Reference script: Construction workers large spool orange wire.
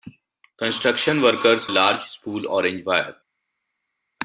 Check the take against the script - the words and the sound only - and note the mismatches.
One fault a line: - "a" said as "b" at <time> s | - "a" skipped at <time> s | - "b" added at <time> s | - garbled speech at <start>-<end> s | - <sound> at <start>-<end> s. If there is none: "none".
none